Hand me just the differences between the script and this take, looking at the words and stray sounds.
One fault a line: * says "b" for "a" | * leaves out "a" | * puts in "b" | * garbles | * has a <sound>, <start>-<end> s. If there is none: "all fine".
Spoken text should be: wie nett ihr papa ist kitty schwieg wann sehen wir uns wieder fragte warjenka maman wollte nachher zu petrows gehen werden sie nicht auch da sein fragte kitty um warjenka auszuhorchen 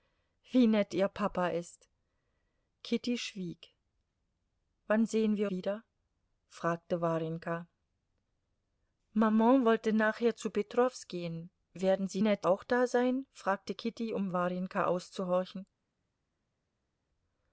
* leaves out "uns"
* says "nett" for "nicht"